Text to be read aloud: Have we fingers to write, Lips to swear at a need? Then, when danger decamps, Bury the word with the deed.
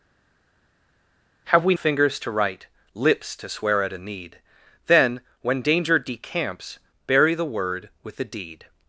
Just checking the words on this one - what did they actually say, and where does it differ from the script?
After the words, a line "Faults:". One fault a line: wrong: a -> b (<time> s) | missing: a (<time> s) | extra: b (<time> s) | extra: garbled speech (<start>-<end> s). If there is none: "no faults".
Have we fingers to write, Lips to swear at a need? Then, when danger decamps, Bury the word with the deed.
Faults:
no faults